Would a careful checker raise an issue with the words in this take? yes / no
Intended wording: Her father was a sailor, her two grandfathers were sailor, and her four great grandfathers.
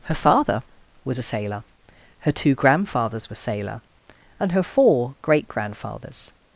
no